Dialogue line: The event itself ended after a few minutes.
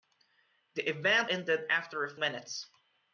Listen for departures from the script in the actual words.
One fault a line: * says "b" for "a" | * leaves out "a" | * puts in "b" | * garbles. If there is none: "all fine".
* leaves out "itself"
* leaves out "few"